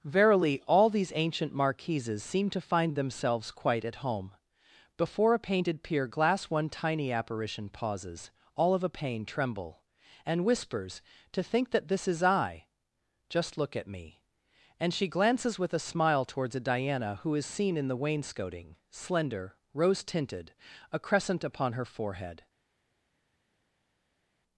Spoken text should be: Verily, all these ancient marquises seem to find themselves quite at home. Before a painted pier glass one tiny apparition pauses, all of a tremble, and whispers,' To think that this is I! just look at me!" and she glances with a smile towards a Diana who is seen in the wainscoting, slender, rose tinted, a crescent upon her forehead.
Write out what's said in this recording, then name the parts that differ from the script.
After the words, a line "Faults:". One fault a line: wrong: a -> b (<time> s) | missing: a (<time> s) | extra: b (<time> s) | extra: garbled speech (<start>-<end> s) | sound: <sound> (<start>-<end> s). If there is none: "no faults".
Verily, all these ancient marquises seem to find themselves quite at home. Before a painted pier glass one tiny apparition pauses, all of a pain tremble, and whispers,' To think that this is I! just look at me!" and she glances with a smile towards a Diana who is seen in the wainscoting, slender, rose tinted, a crescent upon her forehead.
Faults:
extra: pain (8.9 s)